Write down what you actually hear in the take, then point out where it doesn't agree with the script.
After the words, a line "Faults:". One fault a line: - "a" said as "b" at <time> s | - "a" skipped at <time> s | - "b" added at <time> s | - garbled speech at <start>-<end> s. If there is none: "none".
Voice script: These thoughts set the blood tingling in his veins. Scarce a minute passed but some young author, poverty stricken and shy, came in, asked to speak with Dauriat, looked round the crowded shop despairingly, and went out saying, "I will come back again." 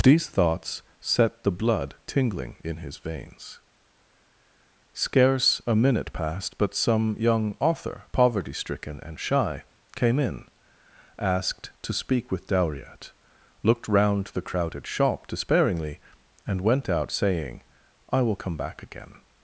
These thoughts set the blood tingling in his veins. Scarce a minute passed but some young author, poverty stricken and shy, came in, asked to speak with Dauriat, looked round the crowded shop despairingly, and went out saying, "I will come back again."
Faults:
none